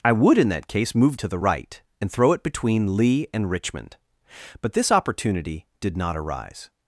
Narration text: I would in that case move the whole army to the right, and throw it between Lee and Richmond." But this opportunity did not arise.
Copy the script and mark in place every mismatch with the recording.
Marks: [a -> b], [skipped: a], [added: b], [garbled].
I would in that case move [skipped: the whole army] to the right, and throw it between Lee and Richmond." But this opportunity did not arise.